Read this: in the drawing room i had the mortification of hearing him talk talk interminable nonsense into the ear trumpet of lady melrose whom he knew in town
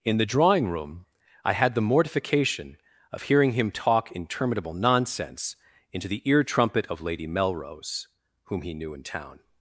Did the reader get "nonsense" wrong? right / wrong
right